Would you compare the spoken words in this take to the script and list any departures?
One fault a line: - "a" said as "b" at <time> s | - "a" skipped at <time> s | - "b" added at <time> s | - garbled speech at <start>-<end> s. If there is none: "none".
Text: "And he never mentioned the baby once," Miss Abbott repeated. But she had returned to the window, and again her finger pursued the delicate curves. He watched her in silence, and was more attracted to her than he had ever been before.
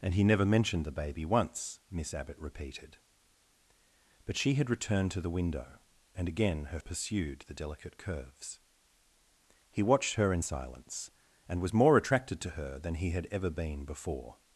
- "finger" skipped at 6.8 s